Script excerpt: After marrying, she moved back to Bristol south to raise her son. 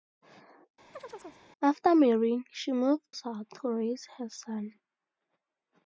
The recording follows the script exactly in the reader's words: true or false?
false